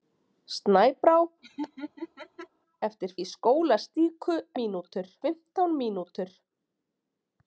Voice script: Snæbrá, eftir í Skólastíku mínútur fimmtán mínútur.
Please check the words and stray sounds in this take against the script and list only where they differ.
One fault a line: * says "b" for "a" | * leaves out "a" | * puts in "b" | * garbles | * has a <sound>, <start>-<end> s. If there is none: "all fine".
* has a laugh, 1.4-2.5 s